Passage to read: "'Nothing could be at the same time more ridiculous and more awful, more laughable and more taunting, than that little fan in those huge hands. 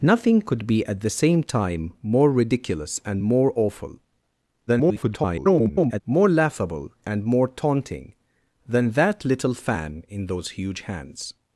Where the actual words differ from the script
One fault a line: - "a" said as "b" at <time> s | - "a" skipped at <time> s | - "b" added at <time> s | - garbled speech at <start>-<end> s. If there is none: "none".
- garbled speech at 4.7-6.0 s